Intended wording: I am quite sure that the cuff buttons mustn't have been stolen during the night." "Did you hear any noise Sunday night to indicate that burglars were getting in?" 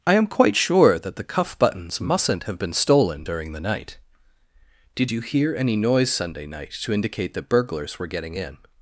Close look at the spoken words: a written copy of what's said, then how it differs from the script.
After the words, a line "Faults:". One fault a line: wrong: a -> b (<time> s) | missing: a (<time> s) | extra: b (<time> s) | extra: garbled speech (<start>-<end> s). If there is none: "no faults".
I am quite sure that the cuff buttons mustn't have been stolen during the night." "Did you hear any noise Sunday night to indicate that burglars were getting in?"
Faults:
no faults